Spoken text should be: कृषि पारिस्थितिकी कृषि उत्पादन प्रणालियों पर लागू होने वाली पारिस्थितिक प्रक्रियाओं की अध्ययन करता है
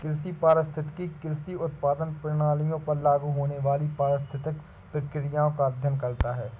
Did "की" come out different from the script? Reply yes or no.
yes